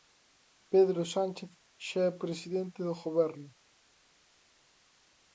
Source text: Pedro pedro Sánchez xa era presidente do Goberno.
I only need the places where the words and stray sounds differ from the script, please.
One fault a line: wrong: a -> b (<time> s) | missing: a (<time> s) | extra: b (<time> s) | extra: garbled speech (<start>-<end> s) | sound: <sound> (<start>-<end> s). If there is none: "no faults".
missing: pedro (1.0 s)
wrong: era -> é (2.1 s)